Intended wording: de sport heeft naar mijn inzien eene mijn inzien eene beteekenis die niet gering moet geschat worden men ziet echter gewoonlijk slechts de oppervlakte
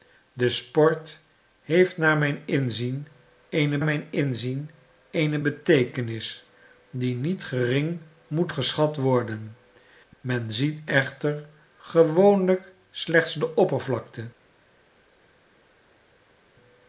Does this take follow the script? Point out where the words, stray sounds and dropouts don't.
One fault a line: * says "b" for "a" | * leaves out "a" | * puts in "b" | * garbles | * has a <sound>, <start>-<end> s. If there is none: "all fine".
all fine